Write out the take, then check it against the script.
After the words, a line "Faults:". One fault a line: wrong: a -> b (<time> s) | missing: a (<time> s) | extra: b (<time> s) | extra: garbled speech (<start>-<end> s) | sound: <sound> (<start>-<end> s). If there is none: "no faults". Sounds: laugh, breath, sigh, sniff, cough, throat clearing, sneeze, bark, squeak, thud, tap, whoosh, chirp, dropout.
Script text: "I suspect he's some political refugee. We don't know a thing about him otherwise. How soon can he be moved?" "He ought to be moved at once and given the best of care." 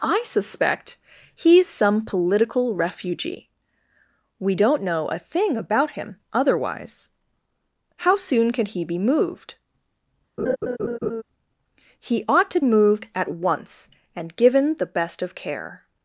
"I suspect he's some political refugee. We don't know a thing about him otherwise. How soon can he be moved?" "He ought to moved at once and given the best of care."
Faults:
sound: laugh (10.4-11.2 s)
missing: be (12.6 s)